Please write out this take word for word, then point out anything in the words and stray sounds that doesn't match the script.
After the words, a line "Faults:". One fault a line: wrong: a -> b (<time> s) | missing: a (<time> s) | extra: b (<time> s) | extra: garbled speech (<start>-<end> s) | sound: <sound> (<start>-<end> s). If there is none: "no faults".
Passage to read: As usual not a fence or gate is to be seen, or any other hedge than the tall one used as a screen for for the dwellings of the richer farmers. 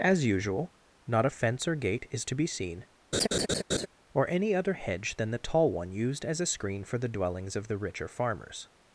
As usual not a fence or gate is to be seen, or any other hedge than the tall one used as a screen for the dwellings of the richer farmers.
Faults:
sound: laugh (3.1-3.9 s)
missing: for (7.0 s)